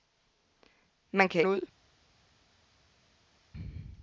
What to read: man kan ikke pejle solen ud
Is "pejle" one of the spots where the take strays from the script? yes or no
yes